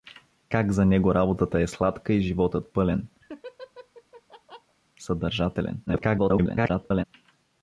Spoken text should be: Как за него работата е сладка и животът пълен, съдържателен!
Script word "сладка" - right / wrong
right